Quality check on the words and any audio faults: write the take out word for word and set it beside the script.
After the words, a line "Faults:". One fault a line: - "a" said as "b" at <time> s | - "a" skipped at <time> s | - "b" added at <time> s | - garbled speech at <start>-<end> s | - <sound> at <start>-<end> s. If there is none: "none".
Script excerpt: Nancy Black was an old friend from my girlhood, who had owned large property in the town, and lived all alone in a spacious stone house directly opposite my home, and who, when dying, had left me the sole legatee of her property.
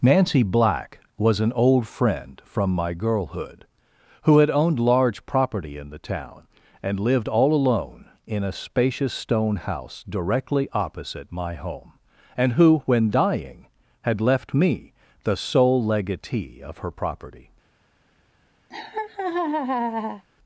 Nancy Black was an old friend from my girlhood, who had owned large property in the town, and lived all alone in a spacious stone house directly opposite my home, and who, when dying, had left me the sole legatee of her property.
Faults:
- laugh at 18.7-20.3 s